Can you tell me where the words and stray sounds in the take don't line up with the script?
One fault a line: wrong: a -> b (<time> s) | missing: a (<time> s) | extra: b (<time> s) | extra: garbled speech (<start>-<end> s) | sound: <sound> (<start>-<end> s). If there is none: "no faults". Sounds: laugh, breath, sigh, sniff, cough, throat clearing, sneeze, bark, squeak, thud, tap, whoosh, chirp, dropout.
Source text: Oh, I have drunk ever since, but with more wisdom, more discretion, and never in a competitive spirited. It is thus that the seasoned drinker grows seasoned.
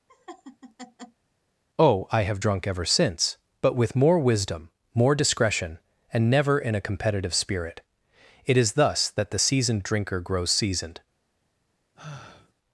sound: laugh (0.1-1.2 s)
wrong: spirited -> spirit (7.3 s)
sound: sigh (12.0-12.5 s)